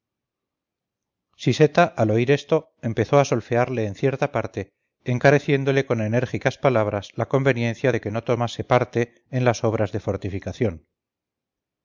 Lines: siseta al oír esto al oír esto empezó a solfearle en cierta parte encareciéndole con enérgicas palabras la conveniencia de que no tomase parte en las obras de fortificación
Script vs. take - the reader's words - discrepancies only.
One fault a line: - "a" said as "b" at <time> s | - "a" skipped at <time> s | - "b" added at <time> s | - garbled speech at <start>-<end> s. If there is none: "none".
- "al oír esto" skipped at 2.7 s